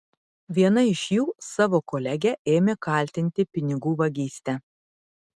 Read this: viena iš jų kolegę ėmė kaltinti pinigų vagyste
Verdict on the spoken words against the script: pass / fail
fail